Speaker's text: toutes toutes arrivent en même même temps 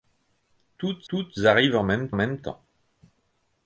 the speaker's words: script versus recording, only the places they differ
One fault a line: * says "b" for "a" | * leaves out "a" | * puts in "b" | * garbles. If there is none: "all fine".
all fine